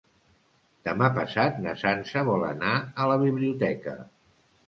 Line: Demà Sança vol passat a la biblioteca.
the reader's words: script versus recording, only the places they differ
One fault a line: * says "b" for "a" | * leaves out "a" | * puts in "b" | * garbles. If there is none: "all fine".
* puts in "passat na"
* says "anar" for "passat"